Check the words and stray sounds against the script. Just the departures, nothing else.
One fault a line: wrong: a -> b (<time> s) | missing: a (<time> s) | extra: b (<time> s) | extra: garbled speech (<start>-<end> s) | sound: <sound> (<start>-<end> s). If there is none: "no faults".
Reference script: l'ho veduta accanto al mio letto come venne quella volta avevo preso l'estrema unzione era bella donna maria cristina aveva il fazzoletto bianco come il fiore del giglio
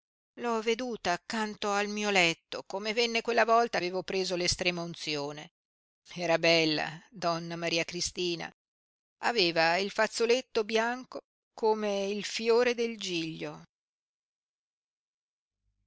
no faults